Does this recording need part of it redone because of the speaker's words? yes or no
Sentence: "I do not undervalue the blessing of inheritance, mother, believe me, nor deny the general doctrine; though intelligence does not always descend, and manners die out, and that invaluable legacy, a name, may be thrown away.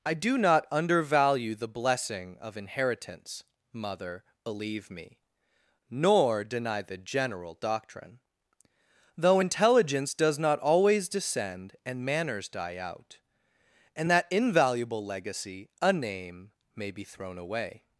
no